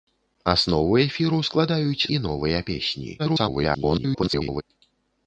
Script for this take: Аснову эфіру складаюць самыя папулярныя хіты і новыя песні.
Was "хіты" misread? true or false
true